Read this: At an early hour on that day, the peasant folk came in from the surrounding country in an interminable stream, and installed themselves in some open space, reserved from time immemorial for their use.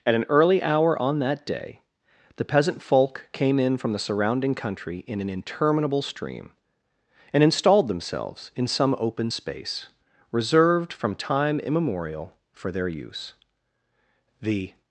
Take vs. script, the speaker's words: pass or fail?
fail